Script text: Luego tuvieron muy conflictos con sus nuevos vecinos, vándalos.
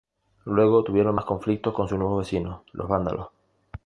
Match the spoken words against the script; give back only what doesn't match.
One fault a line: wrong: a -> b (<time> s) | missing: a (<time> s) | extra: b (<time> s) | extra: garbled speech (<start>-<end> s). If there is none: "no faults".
wrong: muy -> más (1.1 s)
extra: los (2.7 s)